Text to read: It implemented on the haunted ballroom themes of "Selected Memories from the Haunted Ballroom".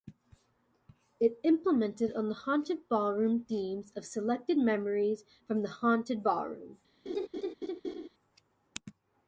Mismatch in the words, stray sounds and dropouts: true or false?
true